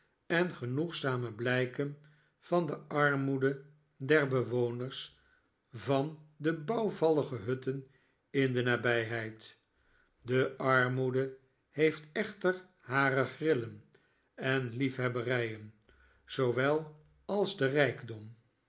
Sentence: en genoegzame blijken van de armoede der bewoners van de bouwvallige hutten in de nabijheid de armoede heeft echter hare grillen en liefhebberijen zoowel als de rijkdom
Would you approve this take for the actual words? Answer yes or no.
yes